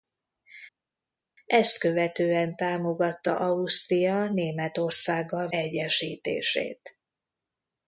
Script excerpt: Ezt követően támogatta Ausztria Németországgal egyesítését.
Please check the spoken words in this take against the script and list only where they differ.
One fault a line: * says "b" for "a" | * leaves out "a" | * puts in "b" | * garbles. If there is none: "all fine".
all fine